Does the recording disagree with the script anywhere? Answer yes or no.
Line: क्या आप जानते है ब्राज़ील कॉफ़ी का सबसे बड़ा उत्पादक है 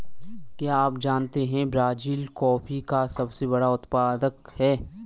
no